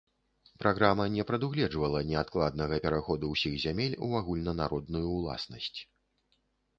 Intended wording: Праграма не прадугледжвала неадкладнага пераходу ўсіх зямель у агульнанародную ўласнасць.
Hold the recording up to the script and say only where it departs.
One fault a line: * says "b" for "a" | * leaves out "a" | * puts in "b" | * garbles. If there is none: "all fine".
all fine